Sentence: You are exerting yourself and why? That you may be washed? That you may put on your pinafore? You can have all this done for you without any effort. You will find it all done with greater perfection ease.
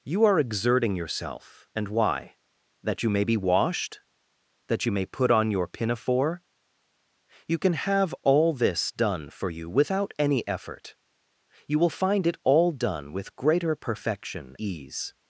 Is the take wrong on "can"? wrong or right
right